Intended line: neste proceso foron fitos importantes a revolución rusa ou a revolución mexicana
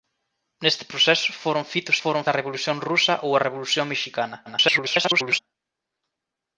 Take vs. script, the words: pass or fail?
fail